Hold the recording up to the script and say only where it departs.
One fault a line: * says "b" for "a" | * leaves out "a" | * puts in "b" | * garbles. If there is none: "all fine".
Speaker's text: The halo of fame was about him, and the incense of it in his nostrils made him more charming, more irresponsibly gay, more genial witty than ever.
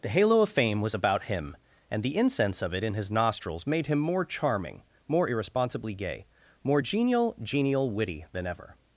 * puts in "genial"